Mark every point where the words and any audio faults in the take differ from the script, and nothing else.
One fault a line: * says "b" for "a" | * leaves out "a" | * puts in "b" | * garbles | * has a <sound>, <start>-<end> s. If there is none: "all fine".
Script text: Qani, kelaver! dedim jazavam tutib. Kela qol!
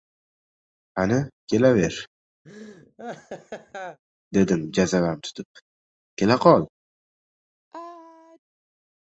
* has a laugh, 2.4-4.0 s
* has a sneeze, 7.7-8.4 s